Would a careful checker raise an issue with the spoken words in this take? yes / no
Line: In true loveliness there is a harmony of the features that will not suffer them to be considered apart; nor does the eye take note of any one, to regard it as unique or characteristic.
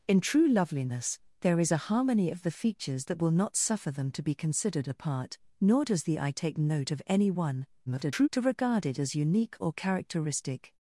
yes